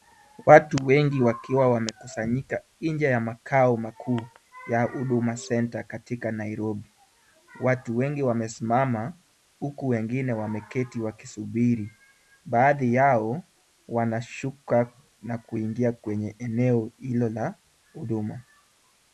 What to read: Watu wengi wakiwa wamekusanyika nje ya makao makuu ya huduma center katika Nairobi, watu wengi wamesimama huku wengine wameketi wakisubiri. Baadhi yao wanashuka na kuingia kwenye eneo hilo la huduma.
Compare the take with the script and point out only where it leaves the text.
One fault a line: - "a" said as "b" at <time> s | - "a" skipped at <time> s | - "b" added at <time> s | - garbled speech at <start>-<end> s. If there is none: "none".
none